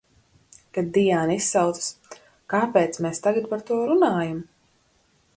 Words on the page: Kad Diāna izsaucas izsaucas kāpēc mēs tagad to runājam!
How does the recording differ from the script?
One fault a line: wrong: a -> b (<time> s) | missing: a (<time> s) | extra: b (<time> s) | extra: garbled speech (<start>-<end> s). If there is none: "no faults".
missing: izsaucas (1.9 s)
extra: par (3.5 s)